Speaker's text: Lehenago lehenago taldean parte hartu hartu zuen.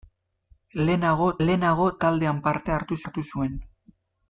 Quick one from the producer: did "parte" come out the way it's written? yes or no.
yes